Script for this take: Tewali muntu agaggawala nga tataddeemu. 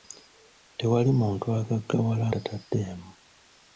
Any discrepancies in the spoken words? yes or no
yes